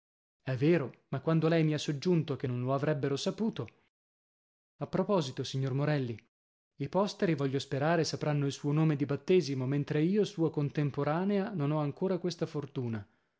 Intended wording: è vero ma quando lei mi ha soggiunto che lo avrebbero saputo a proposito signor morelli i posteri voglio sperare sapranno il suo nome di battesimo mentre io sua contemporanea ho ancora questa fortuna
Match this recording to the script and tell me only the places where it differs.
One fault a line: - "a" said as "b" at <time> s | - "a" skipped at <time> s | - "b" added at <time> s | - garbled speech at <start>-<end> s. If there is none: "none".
- "non" added at 2.4 s
- "non" added at 11.5 s